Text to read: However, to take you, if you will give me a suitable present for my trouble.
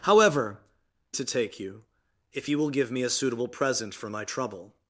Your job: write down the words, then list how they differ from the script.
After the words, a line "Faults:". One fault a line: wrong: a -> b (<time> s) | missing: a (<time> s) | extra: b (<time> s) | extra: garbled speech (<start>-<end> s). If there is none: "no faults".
However, to take you, if you will give me a suitable present for my trouble.
Faults:
no faults